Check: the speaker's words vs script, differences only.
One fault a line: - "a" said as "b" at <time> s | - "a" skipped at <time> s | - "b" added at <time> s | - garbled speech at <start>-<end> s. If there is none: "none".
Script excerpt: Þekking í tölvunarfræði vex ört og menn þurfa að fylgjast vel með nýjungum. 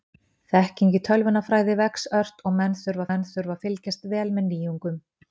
- "menn þurfa" added at 3.1 s